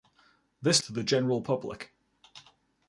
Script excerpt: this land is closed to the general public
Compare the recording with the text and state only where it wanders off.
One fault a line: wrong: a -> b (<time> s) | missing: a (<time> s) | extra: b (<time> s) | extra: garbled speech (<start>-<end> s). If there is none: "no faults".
missing: land is closed (0.8 s)